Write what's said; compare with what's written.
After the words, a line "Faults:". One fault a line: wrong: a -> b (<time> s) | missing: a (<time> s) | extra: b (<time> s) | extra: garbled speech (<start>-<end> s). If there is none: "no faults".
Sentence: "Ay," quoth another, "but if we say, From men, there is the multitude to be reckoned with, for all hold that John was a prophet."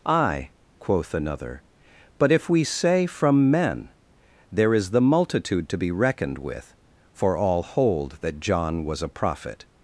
"Ay," quoth another, "but if we say, From men, there is the multitude to be reckoned with, for all hold that John was a prophet."
Faults:
no faults